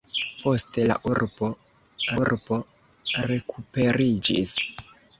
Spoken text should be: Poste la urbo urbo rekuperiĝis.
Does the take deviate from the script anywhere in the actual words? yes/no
no